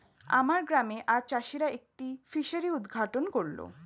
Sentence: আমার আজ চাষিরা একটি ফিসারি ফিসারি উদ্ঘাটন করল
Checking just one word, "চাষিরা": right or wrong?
right